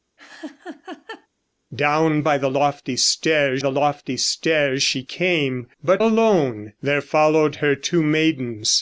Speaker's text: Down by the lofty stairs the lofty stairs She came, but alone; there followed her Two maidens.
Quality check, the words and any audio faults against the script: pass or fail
fail